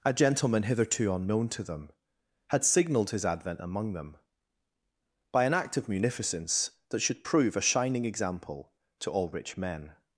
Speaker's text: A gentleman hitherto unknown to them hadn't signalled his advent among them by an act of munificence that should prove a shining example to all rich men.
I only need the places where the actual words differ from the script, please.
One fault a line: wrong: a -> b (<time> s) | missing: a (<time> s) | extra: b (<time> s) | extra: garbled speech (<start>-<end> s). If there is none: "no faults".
wrong: hadn't -> had (2.5 s)